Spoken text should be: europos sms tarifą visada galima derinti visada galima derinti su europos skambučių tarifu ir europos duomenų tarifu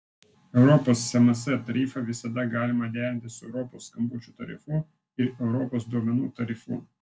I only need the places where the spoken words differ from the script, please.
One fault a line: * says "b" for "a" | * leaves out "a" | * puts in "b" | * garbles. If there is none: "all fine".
* leaves out "visada galima derinti"